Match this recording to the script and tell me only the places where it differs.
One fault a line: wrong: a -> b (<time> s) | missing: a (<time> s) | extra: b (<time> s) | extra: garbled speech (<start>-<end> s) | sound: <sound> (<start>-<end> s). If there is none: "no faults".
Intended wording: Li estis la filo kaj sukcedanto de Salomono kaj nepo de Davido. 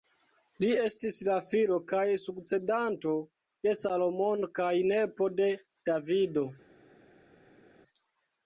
no faults